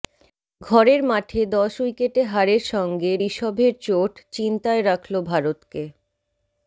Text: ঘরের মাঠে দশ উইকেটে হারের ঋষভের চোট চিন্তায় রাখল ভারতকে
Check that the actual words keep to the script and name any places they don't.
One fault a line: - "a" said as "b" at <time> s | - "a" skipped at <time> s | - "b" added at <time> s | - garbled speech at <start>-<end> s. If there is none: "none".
- "সঙ্গে" added at 2.7 s